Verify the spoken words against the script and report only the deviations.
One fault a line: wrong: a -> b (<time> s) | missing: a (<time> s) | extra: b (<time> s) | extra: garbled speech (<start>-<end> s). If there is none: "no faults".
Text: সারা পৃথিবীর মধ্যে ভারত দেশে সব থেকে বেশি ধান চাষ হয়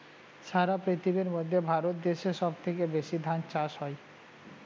no faults